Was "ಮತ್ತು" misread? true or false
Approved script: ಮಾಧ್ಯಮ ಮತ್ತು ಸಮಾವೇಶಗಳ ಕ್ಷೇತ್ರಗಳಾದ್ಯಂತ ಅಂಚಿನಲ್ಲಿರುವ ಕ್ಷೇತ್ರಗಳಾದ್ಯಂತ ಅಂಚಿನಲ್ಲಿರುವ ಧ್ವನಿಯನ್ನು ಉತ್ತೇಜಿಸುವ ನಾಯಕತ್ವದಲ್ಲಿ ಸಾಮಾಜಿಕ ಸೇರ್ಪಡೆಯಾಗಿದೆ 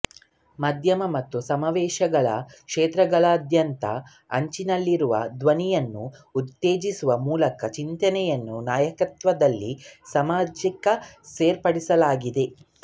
false